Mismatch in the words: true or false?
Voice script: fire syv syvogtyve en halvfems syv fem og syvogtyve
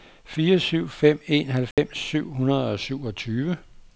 true